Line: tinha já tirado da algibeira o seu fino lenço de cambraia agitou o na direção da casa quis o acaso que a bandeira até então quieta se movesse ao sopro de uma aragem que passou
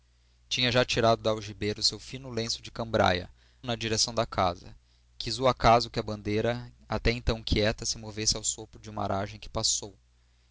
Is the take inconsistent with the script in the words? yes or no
yes